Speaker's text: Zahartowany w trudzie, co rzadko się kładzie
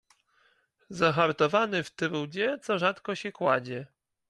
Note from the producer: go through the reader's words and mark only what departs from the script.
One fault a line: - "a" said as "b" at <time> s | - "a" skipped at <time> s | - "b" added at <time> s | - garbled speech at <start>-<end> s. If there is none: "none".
none